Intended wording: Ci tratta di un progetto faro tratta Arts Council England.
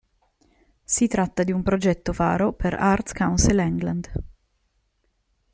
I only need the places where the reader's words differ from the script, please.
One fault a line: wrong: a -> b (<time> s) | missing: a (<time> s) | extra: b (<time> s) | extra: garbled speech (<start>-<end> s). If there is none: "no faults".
wrong: Ci -> Si (0.8 s)
wrong: tratta -> per (2.5 s)